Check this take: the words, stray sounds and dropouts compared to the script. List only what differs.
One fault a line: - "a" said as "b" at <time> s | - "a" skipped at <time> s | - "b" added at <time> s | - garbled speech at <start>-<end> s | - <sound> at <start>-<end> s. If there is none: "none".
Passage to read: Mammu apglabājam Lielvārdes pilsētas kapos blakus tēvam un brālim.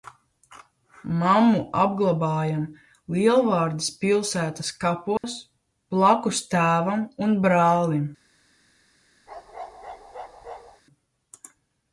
- dropout at 5.2-5.2 s
- bark at 9.3-10.8 s